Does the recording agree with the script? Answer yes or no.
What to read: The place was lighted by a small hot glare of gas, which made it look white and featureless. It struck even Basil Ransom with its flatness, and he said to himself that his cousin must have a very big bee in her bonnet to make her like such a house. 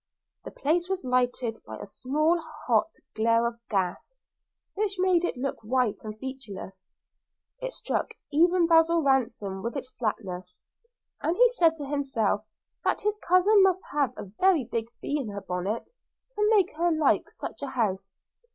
yes